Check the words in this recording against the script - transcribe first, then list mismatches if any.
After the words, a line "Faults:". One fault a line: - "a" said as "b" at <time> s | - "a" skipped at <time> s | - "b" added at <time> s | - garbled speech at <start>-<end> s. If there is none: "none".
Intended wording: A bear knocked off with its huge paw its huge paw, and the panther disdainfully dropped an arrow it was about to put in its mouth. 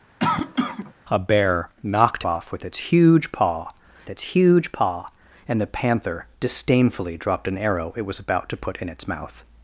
A bear knocked off with its huge paw its huge paw, and the panther disdainfully dropped an arrow it was about to put in its mouth.
Faults:
none